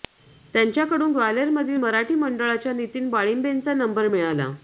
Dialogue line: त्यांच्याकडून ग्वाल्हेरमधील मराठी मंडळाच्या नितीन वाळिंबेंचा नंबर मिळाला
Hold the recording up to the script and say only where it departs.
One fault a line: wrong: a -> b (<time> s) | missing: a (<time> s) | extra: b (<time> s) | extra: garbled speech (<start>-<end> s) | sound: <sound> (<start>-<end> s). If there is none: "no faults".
no faults